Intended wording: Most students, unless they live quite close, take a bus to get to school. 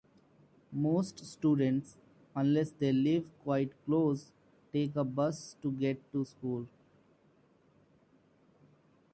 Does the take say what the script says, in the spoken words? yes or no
yes